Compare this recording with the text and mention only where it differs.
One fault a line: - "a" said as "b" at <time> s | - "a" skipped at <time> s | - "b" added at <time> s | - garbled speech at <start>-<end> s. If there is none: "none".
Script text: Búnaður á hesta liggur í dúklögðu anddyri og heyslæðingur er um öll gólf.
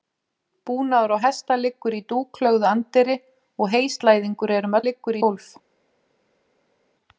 - "öll" said as "liggur" at 4.8 s